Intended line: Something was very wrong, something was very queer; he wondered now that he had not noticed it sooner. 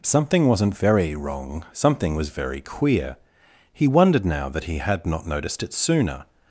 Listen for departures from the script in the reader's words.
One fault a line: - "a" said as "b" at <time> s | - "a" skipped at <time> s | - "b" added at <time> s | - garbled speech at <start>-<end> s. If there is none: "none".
- "was" said as "wasn't" at 0.5 s